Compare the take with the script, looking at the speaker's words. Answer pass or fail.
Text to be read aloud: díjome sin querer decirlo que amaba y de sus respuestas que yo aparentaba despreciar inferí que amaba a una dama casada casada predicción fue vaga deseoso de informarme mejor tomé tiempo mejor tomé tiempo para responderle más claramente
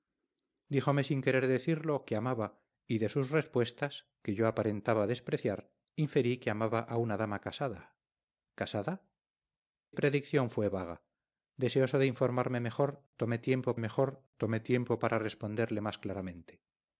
pass